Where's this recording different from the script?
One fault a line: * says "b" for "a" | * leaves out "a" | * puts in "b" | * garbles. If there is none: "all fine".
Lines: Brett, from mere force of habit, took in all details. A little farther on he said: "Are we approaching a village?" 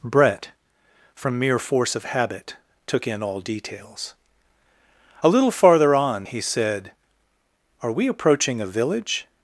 all fine